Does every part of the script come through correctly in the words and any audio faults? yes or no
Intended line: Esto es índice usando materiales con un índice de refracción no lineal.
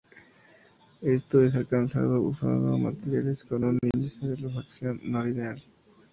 no